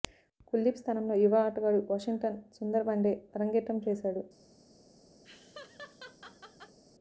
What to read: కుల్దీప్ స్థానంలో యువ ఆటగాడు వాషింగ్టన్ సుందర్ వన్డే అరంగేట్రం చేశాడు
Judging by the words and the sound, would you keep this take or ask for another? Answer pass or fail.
fail